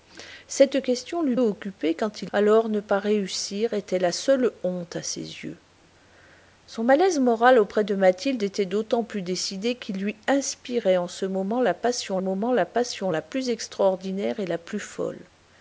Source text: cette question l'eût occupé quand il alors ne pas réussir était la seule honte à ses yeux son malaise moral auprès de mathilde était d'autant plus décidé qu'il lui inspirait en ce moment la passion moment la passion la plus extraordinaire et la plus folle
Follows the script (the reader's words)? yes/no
yes